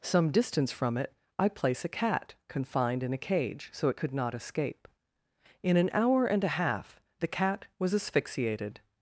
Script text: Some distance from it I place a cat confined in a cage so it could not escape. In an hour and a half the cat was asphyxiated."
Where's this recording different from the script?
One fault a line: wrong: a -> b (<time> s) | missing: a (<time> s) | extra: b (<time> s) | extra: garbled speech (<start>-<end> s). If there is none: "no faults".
no faults